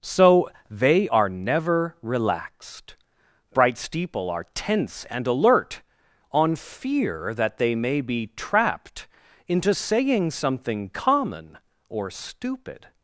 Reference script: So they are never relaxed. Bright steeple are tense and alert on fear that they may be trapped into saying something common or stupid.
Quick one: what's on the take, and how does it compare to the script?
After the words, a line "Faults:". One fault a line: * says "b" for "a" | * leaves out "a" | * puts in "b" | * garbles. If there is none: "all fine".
So they are never relaxed. Bright steeple are tense and alert on fear that they may be trapped into saying something common or stupid.
Faults:
all fine